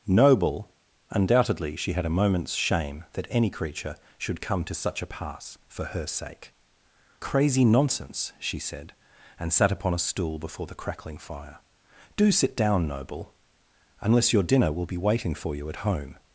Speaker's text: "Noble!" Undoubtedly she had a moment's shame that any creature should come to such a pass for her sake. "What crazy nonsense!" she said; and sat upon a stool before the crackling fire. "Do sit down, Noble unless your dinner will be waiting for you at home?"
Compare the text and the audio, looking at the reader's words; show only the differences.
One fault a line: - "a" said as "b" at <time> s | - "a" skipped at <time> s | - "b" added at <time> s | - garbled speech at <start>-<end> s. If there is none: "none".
- "What" skipped at 6.5 s